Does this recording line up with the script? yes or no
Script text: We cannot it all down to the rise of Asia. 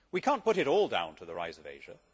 no